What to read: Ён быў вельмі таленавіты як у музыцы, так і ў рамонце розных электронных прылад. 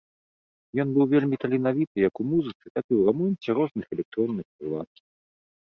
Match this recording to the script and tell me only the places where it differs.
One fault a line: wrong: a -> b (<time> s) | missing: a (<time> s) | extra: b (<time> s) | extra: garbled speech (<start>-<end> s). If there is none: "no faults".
no faults